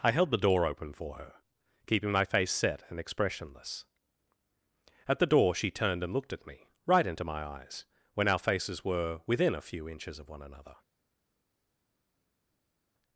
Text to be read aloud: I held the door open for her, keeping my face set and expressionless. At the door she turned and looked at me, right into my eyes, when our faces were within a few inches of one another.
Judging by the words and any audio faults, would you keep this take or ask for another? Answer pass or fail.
pass